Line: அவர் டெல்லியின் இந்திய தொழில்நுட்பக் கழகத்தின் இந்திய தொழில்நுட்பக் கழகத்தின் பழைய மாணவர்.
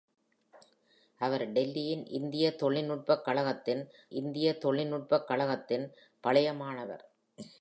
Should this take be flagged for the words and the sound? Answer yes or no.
no